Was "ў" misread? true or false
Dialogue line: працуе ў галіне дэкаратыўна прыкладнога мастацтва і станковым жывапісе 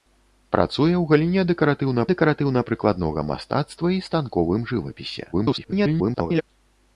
false